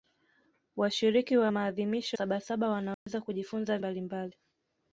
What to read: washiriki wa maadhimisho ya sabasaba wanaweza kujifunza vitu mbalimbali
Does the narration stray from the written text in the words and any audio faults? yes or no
yes